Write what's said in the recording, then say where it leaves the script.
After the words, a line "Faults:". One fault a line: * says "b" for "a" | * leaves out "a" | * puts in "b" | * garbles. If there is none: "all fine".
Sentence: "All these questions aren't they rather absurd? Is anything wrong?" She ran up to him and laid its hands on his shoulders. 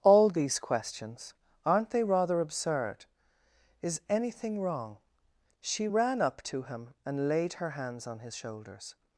"All these questions aren't they rather absurd? Is anything wrong?" She ran up to him and laid her hands on his shoulders.
Faults:
* says "her" for "its"